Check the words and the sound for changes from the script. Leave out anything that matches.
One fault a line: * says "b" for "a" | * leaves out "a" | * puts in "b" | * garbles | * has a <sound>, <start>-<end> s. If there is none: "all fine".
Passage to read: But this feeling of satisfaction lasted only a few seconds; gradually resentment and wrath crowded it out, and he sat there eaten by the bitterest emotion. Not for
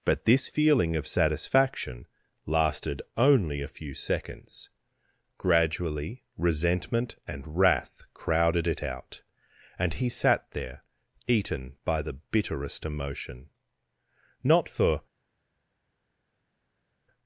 all fine